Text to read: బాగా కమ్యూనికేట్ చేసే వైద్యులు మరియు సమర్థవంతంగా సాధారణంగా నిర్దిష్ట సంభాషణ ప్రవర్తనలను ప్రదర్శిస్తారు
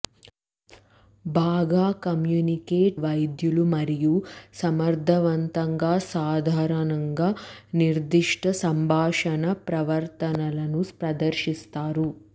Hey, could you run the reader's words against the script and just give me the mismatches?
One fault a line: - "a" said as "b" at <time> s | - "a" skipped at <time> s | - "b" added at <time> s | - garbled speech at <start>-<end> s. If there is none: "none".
- "చేసే" skipped at 3.0 s